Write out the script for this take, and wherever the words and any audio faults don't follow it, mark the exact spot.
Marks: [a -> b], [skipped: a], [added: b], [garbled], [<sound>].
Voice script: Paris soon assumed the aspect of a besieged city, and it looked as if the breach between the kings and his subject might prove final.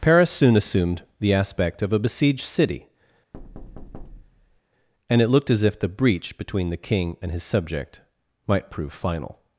Paris soon assumed the aspect of a besieged city, [thud] and it looked as if the breach between the [kings -> king] and his subject might prove final.